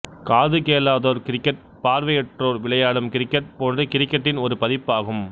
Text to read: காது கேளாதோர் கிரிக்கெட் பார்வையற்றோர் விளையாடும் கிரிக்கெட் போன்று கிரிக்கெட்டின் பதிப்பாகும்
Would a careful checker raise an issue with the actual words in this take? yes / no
yes